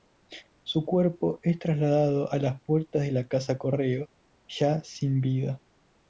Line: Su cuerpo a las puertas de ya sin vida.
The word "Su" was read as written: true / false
true